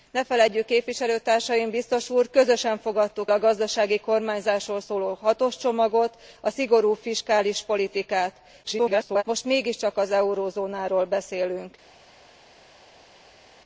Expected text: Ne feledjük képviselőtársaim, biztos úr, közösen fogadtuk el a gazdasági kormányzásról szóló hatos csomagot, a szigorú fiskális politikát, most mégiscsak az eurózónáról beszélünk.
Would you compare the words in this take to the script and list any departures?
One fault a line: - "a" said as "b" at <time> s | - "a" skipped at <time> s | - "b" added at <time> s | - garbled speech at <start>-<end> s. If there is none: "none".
- "el" skipped at 3.3 s
- garbled speech at 8.6-9.2 s